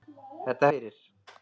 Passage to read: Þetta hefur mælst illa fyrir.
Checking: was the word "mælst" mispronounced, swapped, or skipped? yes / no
yes